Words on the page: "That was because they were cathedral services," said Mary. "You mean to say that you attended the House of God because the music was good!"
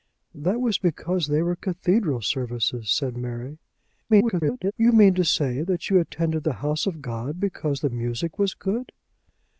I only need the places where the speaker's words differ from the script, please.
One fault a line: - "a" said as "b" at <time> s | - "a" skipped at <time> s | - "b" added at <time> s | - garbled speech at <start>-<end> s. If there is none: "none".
- garbled speech at 4.1-4.7 s